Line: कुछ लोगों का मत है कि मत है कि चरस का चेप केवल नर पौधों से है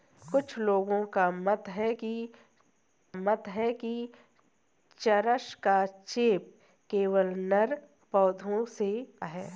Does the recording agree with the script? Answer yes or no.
yes